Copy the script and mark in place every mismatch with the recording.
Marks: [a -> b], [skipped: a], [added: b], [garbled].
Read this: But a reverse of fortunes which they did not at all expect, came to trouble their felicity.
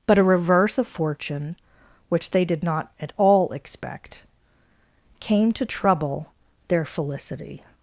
But a reverse of [fortunes -> fortune] which they did not at all expect, came to trouble their felicity.